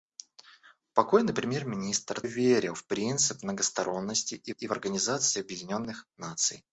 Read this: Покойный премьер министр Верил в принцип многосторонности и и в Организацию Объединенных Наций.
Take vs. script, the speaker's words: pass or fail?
pass